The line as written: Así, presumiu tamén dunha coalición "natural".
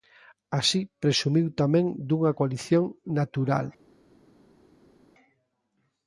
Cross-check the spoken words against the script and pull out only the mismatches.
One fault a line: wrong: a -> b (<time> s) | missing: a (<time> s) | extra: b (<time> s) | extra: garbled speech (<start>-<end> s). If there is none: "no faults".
no faults